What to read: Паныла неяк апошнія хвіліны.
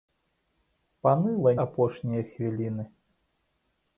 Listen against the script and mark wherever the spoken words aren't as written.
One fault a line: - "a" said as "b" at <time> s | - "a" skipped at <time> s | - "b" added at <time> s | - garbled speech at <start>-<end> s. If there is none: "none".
- "неяк" skipped at 1.5 s